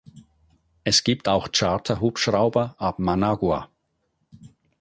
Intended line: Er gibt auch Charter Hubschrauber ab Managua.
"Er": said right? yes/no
no